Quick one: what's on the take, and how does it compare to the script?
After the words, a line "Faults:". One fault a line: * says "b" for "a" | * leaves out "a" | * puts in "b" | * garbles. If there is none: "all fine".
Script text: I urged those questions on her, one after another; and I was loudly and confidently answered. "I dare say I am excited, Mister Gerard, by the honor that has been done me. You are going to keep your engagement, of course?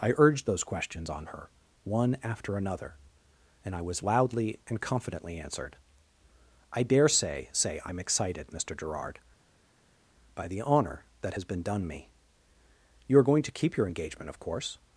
I urged those questions on her, one after another; and I was loudly and confidently answered. "I dare say say I am excited, Mister Gerard, by the honor that has been done me. You are going to keep your engagement, of course?
Faults:
* puts in "say"